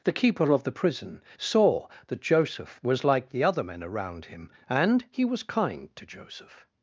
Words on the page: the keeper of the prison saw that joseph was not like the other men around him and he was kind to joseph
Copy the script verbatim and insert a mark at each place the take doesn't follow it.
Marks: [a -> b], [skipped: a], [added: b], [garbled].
the keeper of the prison saw that joseph was [skipped: not] like the other men around him and he was kind to joseph